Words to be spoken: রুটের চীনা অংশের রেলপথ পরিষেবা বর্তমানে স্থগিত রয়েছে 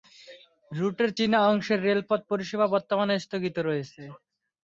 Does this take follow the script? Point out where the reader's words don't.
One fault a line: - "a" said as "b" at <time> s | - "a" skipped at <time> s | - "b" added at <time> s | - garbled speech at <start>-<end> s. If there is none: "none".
none